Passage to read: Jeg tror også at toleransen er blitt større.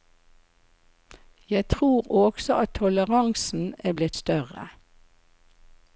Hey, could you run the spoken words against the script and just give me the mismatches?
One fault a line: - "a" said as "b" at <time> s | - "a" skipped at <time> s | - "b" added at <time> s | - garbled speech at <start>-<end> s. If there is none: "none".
none